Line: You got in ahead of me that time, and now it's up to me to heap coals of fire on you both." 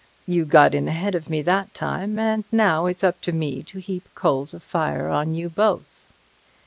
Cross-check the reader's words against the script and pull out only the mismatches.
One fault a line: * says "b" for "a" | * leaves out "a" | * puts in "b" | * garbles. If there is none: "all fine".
all fine